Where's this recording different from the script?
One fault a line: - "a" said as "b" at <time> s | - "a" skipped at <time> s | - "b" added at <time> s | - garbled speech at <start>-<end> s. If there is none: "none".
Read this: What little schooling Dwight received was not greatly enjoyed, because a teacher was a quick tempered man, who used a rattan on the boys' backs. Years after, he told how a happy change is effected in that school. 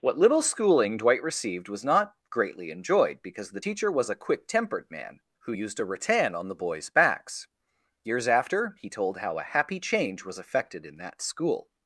- "a" said as "the" at 3.5 s
- "is" said as "was" at 10.2 s